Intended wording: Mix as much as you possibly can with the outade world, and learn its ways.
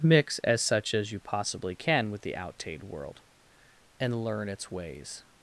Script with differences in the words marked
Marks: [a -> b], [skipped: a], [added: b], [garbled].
Mix as [much -> such] as you possibly can with the outade world, and learn its ways.